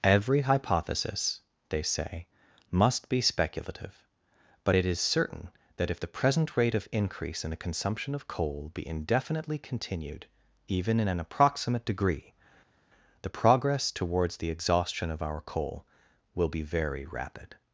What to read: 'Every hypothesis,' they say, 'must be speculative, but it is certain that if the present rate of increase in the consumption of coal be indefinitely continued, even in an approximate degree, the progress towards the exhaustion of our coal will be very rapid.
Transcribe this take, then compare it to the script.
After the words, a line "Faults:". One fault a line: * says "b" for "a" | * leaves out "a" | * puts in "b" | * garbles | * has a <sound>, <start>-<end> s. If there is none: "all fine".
'Every hypothesis,' they say, 'must be speculative, but it is certain that if the present rate of increase in the consumption of coal be indefinitely continued, even in an approximate degree, the progress towards the exhaustion of our coal will be very rapid.
Faults:
all fine